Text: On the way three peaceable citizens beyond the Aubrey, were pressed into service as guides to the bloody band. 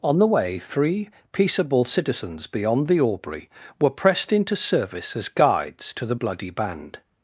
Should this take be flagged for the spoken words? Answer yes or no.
no